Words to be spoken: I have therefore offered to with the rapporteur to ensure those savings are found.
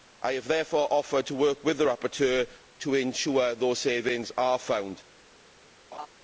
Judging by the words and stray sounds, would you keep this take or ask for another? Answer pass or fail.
fail